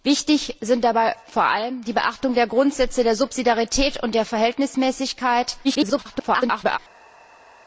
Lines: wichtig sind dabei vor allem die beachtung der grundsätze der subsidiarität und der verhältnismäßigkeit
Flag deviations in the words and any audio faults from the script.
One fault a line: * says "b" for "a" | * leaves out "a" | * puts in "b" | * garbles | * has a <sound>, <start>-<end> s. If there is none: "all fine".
* garbles